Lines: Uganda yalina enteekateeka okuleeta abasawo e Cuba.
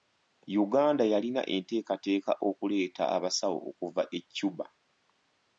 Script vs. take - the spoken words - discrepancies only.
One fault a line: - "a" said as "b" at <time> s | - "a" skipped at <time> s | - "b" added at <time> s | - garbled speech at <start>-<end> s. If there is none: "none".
- "okuva" added at 3.7 s